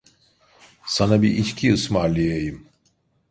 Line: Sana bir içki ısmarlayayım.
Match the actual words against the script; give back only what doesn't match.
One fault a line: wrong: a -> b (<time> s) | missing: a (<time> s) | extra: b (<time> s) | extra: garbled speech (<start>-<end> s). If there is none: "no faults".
no faults